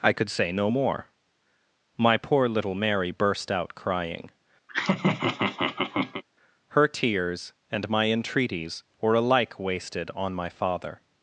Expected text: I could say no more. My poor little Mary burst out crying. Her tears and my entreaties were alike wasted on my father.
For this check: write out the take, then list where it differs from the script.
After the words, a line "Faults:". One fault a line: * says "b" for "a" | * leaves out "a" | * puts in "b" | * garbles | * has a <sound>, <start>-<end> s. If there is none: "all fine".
I could say no more. My poor little Mary burst out crying. Her tears and my entreaties were alike wasted on my father.
Faults:
* has a laugh, 4.7-6.2 s